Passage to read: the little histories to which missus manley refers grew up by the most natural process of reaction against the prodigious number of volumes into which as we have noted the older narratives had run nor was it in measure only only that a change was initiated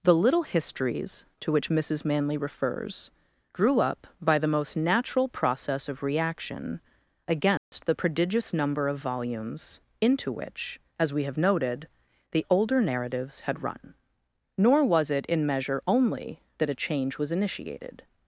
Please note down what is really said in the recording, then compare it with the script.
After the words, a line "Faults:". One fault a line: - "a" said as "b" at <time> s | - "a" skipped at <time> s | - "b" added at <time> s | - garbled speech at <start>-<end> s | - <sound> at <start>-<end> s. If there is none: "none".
the little histories to which missus manley refers grew up by the most natural process of reaction against the prodigious number of volumes into which as we have noted the older narratives had run nor was it in measure only that a change was initiated
Faults:
- dropout at 7.6-7.7 s
- "only" skipped at 16.4 s